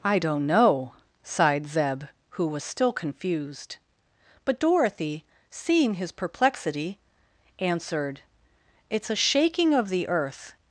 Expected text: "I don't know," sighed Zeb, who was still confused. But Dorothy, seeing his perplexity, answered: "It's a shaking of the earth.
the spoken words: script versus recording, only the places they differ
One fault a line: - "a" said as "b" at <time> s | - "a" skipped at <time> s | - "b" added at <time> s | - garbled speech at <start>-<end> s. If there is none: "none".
none